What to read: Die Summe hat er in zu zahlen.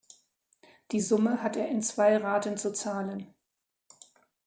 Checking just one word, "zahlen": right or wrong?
right